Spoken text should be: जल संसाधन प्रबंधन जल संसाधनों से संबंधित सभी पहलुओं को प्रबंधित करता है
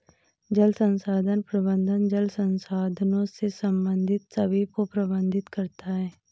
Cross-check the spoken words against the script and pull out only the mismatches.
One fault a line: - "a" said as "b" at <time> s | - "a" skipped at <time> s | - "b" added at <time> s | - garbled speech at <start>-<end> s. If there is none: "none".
- "पहलुओं" skipped at 4.6 s